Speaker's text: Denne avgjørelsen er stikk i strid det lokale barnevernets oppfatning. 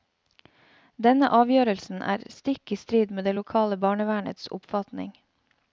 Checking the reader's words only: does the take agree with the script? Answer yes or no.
no